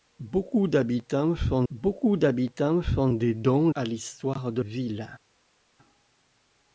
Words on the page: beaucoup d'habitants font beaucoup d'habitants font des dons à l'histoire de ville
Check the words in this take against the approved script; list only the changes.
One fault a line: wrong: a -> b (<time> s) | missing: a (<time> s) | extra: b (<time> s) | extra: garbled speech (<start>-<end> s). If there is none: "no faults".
no faults